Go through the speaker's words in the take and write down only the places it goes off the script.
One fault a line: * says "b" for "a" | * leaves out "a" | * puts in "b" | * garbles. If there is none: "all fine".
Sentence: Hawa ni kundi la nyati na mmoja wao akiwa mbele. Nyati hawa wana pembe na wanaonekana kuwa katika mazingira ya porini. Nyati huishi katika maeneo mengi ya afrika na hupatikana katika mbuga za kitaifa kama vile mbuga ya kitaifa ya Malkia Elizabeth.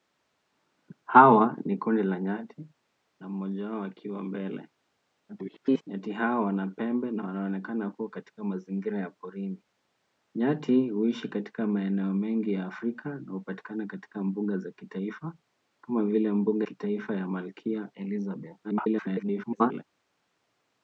* garbles
* leaves out "ya"
* garbles